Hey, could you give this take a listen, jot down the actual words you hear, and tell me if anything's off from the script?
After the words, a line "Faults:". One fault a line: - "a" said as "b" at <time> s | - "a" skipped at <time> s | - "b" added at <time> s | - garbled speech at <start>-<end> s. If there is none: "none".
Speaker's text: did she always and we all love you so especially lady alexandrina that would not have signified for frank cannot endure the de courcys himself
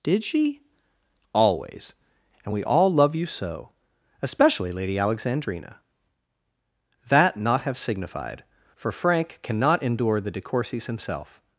did she always and we all love you so especially lady alexandrina that not have signified for frank cannot endure the de courcys himself
Faults:
- "would" skipped at 7.4 s